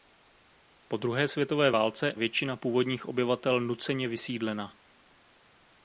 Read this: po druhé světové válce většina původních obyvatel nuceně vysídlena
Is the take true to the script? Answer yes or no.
yes